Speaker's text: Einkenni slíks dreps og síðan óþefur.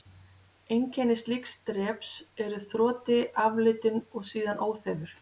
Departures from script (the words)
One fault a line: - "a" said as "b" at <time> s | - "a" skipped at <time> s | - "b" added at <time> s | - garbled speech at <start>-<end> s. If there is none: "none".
- "eru þroti aflitun" added at 2.4 s